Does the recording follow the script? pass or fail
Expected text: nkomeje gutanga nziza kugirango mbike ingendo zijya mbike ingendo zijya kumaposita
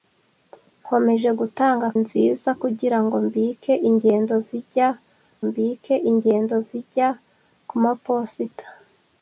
pass